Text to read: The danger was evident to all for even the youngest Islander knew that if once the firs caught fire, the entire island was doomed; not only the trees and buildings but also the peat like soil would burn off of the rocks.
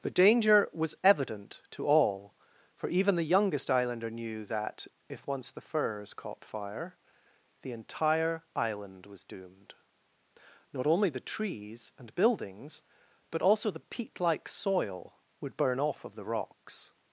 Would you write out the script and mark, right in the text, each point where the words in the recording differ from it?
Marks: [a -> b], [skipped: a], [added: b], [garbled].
The danger was evident to all for even the youngest Islander knew that if once the firs caught fire, the entire island was doomed; not only the trees and buildings but also the peat like soil would burn off of the rocks.